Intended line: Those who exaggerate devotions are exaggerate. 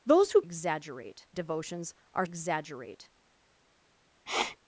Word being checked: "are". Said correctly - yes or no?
yes